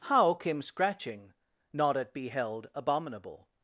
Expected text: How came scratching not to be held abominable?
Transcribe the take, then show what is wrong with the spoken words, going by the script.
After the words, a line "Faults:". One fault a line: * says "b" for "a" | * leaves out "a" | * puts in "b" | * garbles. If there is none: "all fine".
How came scratching not at be held abominable?
Faults:
* says "at" for "to"